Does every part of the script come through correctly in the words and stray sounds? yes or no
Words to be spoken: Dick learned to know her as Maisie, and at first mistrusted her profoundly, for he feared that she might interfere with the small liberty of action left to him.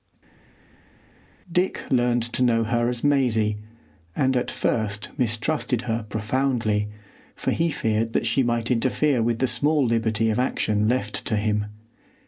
yes